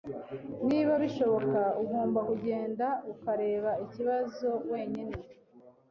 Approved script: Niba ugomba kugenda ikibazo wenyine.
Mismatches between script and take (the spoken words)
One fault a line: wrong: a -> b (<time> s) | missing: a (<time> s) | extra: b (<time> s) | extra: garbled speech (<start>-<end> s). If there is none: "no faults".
extra: bishoboka (1.0 s)
extra: ukareba (3.1 s)